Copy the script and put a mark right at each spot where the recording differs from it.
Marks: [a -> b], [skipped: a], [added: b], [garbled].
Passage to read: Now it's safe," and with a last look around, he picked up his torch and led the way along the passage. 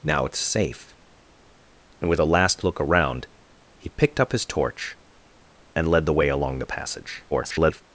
Now it's safe," and with a last look around, he picked up his torch and led the way along the passage. [garbled]